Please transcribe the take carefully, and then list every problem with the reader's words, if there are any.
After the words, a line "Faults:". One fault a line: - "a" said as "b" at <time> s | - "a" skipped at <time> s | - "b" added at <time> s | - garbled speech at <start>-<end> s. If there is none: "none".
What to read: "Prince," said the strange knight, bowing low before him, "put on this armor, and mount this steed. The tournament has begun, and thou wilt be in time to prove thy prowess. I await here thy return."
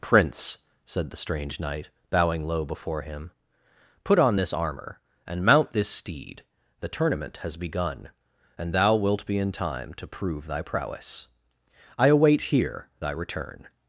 "Prince," said the strange knight, bowing low before him, "put on this armor, and mount this steed. The tournament has begun, and thou wilt be in time to prove thy prowess. I await here thy return."
Faults:
none